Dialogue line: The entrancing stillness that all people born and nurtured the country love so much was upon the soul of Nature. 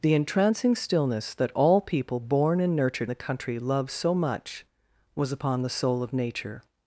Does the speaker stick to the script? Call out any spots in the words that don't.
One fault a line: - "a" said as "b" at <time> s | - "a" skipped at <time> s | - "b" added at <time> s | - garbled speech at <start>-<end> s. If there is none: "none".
none